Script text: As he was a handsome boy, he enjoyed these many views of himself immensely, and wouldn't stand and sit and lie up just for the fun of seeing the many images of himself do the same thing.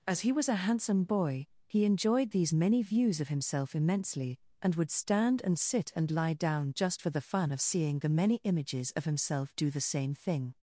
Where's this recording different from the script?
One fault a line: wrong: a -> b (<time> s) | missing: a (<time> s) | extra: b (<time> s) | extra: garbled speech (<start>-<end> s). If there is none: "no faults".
wrong: wouldn't -> would (4.7 s)
wrong: up -> down (6.3 s)